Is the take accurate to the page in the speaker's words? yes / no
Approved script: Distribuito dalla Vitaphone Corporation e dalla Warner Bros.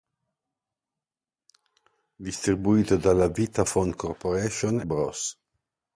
no